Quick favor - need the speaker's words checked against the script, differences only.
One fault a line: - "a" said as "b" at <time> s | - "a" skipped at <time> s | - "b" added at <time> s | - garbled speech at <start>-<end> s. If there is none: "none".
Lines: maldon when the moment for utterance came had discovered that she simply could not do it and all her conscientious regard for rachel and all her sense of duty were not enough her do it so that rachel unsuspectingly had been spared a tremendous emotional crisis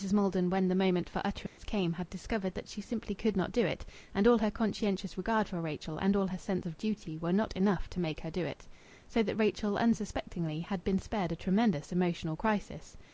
- "to make" added at 7.9 s